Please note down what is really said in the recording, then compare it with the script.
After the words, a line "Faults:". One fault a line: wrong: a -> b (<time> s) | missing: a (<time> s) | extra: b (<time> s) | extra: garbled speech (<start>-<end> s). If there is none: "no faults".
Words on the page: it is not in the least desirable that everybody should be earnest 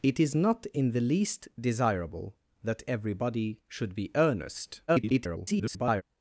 it is not in the least desirable that everybody should be earnest [garbled]
Faults:
extra: garbled speech (4.9-6.0 s)